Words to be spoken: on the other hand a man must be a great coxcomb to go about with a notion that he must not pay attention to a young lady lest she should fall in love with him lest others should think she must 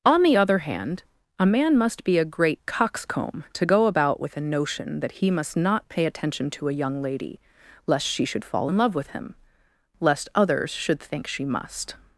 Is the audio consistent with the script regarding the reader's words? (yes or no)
yes